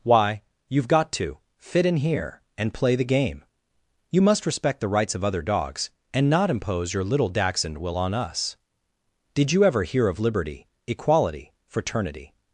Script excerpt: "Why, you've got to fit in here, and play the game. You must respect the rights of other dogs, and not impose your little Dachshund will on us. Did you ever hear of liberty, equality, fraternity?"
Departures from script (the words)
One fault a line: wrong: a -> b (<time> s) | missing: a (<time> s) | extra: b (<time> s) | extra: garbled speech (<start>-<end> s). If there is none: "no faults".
no faults